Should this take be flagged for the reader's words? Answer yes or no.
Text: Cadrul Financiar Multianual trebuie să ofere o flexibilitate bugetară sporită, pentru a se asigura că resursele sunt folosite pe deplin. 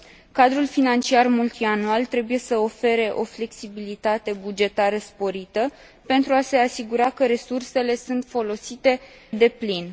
yes